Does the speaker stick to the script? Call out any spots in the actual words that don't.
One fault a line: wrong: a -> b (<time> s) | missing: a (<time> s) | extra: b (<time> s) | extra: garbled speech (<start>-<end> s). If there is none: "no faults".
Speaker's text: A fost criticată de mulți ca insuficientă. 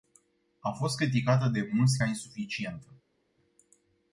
no faults